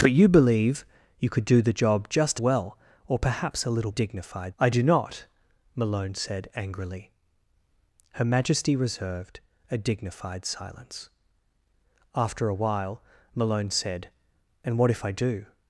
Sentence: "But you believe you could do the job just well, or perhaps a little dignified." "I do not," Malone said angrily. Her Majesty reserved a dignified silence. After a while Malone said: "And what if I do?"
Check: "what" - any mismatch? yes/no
no